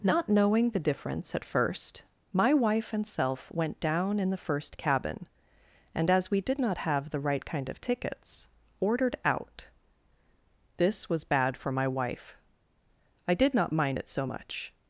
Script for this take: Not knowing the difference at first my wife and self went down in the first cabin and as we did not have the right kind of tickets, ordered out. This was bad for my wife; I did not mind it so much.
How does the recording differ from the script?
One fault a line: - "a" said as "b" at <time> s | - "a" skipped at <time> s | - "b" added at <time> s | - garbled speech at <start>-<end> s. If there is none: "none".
none